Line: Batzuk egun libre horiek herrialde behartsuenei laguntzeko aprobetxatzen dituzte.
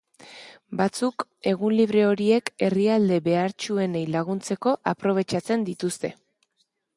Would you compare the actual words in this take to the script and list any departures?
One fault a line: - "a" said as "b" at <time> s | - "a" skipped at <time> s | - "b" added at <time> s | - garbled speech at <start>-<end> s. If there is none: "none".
none